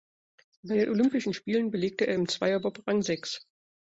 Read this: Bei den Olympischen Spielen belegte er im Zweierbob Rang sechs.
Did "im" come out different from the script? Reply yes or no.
no